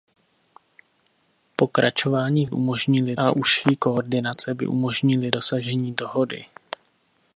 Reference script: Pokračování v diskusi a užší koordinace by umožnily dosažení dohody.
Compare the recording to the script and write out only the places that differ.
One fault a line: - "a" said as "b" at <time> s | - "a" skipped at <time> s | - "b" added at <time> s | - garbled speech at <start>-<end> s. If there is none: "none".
- "diskusi" said as "umožnily" at 2.5 s